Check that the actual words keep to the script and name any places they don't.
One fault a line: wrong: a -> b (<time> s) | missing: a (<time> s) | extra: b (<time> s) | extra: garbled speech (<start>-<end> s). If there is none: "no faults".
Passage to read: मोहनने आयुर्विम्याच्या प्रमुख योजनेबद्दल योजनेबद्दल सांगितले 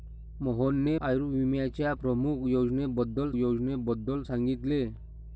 no faults